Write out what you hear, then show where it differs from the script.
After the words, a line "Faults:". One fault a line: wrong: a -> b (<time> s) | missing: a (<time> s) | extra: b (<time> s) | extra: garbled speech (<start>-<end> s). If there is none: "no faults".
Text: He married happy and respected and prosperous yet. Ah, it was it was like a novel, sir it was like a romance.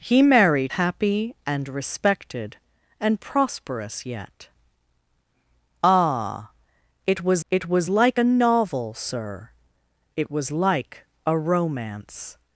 He married happy and respected and prosperous yet. Ah, it was it was like a novel, sir it was like a romance.
Faults:
no faults